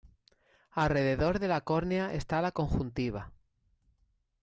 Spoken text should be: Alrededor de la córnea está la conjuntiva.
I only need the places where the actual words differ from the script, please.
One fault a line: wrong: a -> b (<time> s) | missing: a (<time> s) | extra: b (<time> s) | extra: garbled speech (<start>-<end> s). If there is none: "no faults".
no faults